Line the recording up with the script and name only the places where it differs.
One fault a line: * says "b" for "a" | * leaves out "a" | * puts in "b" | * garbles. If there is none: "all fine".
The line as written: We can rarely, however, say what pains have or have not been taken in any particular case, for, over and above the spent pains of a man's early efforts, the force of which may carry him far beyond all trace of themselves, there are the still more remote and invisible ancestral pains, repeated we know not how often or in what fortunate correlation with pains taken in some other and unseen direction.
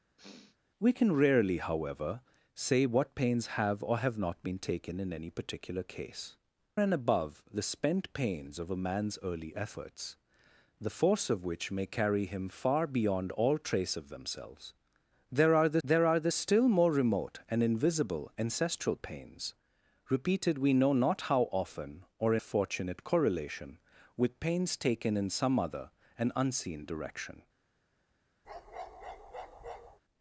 * leaves out "for over"
* puts in "there are the"
* leaves out "in what"